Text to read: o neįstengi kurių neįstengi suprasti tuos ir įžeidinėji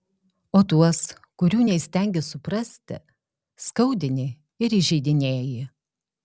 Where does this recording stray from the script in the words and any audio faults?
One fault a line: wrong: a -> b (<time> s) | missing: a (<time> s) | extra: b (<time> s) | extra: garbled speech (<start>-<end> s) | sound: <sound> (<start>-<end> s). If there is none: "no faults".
wrong: neįstengi -> tuos (0.7 s)
wrong: tuos -> skaudini (3.7 s)